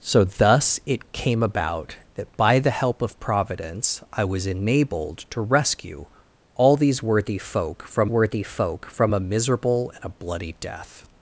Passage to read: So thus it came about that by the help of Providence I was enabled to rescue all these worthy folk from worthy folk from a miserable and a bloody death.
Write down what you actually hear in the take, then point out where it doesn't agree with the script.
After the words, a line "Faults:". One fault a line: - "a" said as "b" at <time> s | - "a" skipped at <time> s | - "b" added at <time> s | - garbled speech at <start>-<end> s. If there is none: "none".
So thus it came about that by the help of Providence I was enabled to rescue all these worthy folk from worthy folk from a miserable and a bloody death.
Faults:
none